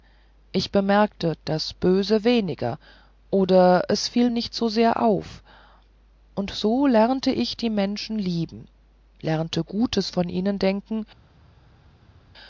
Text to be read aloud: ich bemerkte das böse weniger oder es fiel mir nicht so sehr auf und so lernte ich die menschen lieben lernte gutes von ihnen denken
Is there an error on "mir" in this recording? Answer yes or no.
yes